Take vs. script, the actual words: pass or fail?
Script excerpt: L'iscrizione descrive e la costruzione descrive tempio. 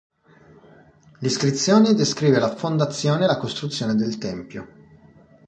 fail